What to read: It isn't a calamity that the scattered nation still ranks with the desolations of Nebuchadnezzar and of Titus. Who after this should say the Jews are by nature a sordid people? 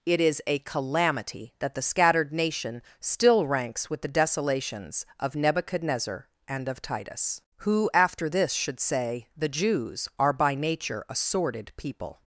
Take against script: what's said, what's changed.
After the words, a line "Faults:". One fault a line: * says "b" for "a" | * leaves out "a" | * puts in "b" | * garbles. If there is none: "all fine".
It is a calamity that the scattered nation still ranks with the desolations of Nebuchadnezzar and of Titus. Who after this should say the Jews are by nature a sordid people?
Faults:
* says "is" for "isn't"